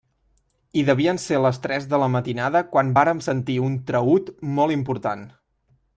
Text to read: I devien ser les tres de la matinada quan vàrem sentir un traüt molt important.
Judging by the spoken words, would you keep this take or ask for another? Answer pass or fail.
pass